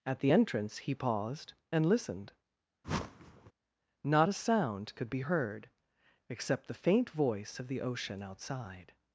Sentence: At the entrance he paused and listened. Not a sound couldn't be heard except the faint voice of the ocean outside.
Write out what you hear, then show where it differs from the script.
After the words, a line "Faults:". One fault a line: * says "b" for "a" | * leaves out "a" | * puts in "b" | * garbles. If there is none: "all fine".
At the entrance he paused and listened. Not a sound could be heard except the faint voice of the ocean outside.
Faults:
* says "could" for "couldn't"